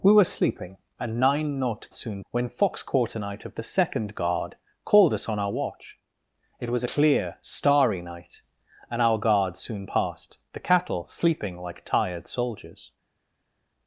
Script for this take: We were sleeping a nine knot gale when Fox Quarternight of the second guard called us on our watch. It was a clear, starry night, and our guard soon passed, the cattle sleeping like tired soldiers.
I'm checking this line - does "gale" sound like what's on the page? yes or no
no